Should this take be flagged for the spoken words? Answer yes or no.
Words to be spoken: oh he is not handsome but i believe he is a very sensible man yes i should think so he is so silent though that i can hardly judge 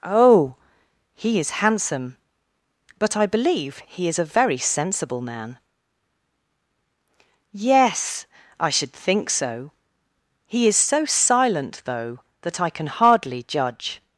yes